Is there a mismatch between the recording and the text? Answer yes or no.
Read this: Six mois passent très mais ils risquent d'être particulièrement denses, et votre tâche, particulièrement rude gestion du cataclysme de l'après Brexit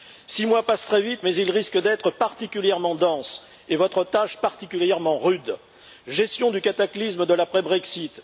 yes